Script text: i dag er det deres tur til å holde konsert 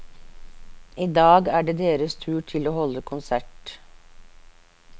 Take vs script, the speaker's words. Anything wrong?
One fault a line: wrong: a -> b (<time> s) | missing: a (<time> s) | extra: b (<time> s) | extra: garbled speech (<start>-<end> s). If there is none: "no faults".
no faults